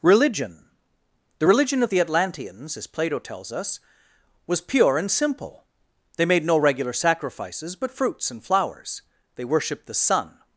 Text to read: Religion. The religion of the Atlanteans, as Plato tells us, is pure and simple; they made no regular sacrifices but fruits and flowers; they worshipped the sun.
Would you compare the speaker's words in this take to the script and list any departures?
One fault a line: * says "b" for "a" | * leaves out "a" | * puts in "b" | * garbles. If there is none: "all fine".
* says "was" for "is"